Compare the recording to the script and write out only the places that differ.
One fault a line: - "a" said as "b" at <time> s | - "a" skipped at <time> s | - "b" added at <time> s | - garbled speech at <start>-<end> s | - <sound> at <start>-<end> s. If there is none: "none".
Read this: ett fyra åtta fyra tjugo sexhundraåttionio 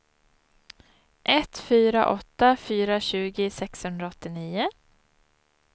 none